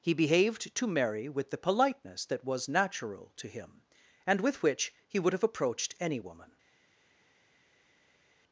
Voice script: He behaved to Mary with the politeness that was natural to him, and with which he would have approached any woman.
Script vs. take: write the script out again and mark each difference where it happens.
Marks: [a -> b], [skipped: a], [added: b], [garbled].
He behaved to Mary with the politeness that was natural to him, and with which he would have approached any woman.